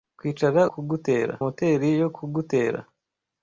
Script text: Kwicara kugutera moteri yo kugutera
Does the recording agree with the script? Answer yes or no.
yes